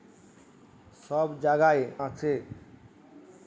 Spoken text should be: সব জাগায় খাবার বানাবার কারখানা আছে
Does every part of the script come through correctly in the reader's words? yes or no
no